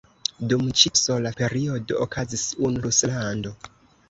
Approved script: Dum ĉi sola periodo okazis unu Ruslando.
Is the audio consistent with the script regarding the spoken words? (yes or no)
yes